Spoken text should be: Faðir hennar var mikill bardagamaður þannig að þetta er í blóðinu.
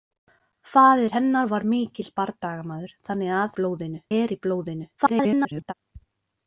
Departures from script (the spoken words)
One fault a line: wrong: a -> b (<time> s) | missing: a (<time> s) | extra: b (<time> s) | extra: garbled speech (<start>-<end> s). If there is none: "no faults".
wrong: þetta -> blóðinu (3.6 s)
extra: garbled speech (5.0-5.7 s)